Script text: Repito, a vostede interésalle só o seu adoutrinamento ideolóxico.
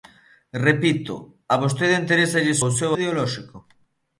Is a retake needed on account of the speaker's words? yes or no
yes